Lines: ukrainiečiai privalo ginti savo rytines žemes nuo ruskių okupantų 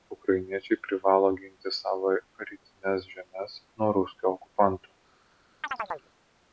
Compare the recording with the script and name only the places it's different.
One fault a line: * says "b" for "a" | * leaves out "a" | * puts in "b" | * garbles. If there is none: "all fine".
all fine